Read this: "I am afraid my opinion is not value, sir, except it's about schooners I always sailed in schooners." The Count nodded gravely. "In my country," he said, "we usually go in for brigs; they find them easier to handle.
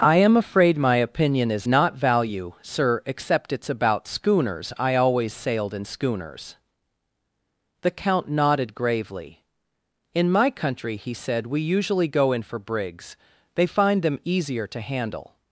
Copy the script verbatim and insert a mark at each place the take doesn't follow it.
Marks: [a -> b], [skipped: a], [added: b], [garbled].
"I am afraid my opinion is not value, sir, except it's about schooners I always sailed in schooners." The Count nodded gravely. "In my country," he said, "we usually go in for brigs; they find them easier to handle.